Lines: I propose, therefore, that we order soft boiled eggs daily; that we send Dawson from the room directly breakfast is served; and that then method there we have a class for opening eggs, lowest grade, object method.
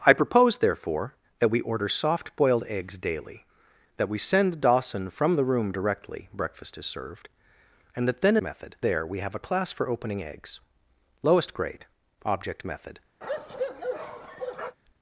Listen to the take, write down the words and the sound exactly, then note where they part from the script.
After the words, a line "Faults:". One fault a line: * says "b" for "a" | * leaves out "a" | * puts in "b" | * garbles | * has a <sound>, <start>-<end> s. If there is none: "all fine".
I propose, therefore, that we order soft boiled eggs daily; that we send Dawson from the room directly breakfast is served; and that then method there we have a class for opening eggs, lowest grade, object method.
Faults:
* has a bark, 13.2-14.8 s